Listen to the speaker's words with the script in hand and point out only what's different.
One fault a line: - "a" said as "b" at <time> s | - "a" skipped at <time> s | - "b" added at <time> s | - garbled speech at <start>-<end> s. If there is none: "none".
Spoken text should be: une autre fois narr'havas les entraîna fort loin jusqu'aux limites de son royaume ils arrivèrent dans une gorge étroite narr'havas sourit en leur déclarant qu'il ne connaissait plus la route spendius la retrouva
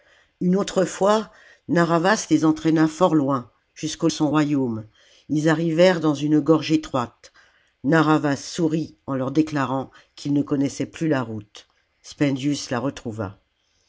- "limites de" skipped at 4.1 s